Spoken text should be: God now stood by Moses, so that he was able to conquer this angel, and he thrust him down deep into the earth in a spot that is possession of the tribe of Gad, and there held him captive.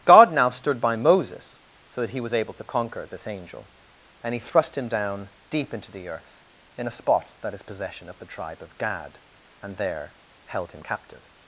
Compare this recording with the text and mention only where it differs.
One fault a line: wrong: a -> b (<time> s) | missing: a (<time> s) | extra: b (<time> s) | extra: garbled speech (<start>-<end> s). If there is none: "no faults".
no faults